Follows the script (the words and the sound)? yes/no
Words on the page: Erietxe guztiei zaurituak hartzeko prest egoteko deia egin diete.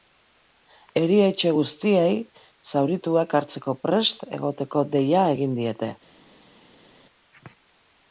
yes